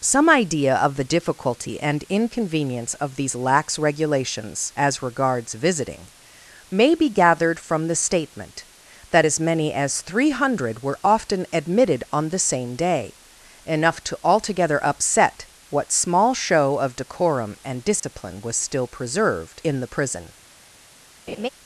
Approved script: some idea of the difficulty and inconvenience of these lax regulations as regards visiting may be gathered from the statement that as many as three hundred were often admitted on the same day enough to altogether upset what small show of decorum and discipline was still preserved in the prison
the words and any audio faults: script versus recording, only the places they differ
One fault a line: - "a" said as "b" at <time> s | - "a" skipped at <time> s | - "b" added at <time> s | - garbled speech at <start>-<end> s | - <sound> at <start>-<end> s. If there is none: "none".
- dropout at 18.0-18.0 s
- laugh at 21.3-21.5 s